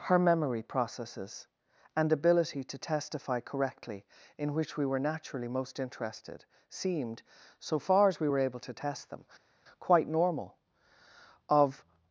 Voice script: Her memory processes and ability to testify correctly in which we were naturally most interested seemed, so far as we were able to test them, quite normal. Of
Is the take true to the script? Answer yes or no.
yes